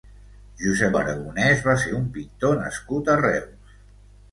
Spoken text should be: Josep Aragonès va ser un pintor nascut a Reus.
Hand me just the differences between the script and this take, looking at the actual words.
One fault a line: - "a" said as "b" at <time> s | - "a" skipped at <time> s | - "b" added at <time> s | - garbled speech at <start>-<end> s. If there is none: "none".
none